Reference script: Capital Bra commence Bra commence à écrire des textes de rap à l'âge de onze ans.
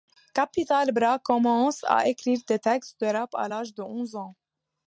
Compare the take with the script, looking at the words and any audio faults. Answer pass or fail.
fail